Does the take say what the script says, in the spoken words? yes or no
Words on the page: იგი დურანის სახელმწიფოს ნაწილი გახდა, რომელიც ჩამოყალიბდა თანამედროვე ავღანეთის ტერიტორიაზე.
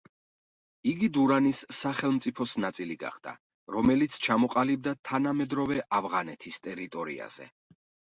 yes